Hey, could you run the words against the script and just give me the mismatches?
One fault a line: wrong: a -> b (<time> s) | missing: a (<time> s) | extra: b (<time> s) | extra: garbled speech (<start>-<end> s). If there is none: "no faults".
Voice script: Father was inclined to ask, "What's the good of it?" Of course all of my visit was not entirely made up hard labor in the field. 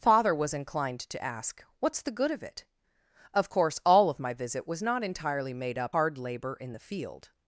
no faults